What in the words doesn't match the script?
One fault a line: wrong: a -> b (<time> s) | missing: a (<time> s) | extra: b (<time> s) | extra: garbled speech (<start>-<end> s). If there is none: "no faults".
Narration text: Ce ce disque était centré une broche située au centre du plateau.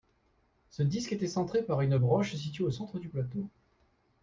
missing: ce (0.8 s)
extra: par (1.6 s)